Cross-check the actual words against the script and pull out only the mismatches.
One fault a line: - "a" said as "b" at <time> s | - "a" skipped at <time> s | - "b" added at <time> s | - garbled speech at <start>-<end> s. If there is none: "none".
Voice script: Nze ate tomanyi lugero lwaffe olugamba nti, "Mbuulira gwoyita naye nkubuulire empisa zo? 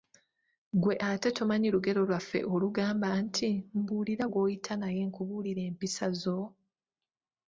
- "Nze" said as "Ggwe" at 0.8 s